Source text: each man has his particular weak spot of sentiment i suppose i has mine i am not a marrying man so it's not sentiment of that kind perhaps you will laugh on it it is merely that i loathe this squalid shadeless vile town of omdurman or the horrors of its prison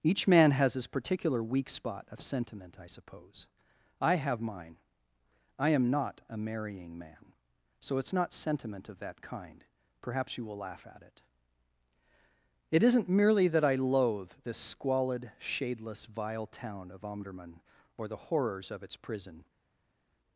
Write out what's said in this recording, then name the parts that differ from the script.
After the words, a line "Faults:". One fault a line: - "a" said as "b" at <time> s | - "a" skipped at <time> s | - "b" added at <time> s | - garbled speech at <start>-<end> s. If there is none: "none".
each man has his particular weak spot of sentiment i suppose i have mine i am not a marrying man so it's not sentiment of that kind perhaps you will laugh at it it isn't merely that i loathe this squalid shadeless vile town of omdurman or the horrors of its prison
Faults:
- "has" said as "have" at 4.2 s
- "on" said as "at" at 10.9 s
- "is" said as "isn't" at 12.8 s